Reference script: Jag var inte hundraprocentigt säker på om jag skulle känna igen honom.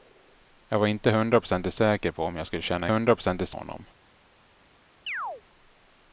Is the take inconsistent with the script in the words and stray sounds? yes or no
yes